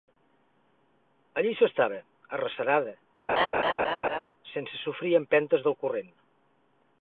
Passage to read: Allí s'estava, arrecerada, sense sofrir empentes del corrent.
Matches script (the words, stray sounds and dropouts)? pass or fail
fail